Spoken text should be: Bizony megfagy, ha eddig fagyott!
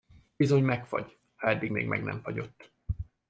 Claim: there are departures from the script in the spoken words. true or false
true